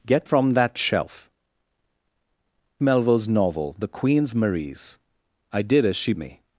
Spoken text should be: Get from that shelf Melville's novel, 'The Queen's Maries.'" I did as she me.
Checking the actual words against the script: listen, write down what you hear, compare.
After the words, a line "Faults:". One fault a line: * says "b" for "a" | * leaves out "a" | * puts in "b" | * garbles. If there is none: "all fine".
Get from that shelf Melville's novel, 'The Queen's Maries.'" I did as she me.
Faults:
all fine